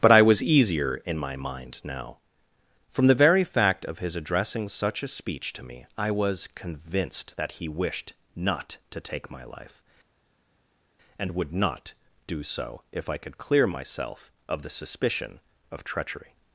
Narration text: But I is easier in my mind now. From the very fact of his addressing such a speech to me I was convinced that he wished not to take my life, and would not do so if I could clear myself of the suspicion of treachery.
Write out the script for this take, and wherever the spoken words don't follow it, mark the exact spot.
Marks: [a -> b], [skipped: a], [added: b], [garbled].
But I [is -> was] easier in my mind now. From the very fact of his addressing such a speech to me I was convinced that he wished not to take my life, and would not do so if I could clear myself of the suspicion of treachery.